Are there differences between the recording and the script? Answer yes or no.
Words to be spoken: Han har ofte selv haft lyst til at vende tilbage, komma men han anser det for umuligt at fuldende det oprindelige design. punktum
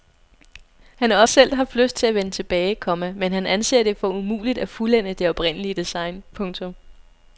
yes